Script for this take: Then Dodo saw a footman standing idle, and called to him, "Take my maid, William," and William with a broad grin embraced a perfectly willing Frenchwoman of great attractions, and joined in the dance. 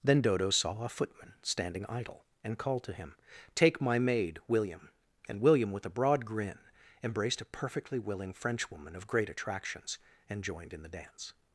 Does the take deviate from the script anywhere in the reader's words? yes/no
no